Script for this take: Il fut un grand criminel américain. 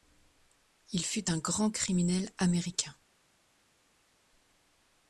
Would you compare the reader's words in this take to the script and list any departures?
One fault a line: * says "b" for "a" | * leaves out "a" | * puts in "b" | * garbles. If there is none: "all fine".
all fine